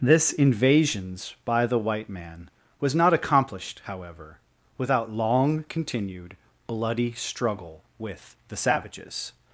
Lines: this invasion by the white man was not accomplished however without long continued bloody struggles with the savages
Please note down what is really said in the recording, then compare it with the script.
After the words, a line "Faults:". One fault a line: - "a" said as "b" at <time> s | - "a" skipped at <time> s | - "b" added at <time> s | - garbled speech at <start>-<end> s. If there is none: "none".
this invasions by the white man was not accomplished however without long continued bloody struggle with the savages
Faults:
- "invasion" said as "invasions" at 0.3 s
- "struggles" said as "struggle" at 7.1 s